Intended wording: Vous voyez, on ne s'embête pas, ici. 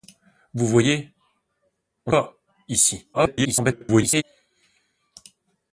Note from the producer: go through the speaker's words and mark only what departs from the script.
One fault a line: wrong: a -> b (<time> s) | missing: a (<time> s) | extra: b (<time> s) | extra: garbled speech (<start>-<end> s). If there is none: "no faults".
missing: ne s'embête (2.1 s)
extra: garbled speech (3.1-4.2 s)